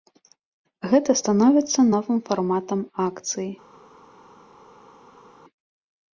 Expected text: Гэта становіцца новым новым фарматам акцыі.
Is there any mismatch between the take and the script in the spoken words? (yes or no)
yes